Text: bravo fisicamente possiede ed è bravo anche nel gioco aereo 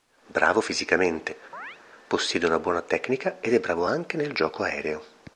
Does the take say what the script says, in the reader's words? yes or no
no